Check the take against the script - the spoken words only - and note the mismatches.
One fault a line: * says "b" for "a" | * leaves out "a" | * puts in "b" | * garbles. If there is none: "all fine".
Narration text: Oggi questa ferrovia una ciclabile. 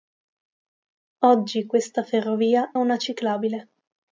all fine